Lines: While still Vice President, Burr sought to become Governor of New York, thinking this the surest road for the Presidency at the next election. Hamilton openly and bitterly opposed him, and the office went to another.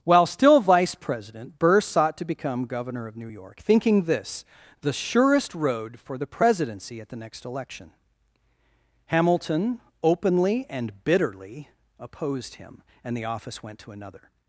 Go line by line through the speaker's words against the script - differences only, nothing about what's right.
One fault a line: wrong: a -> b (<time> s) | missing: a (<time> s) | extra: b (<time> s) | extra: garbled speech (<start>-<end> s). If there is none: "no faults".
no faults